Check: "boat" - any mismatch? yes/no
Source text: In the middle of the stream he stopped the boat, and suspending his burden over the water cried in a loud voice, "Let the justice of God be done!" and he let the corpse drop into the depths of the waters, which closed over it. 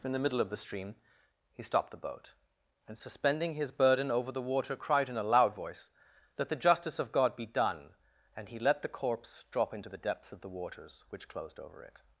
no